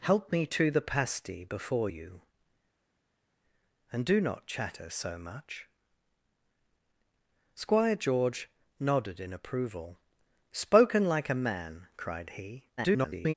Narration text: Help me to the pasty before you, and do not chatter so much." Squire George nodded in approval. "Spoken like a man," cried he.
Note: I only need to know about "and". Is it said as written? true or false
true